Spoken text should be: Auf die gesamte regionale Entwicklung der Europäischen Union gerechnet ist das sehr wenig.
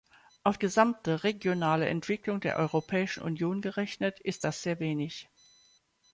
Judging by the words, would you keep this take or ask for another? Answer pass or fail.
fail